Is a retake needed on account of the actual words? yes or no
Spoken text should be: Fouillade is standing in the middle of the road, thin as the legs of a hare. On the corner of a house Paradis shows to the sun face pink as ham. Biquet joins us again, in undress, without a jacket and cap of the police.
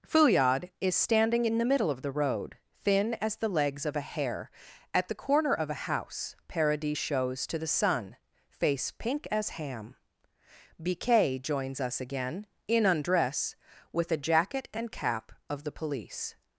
yes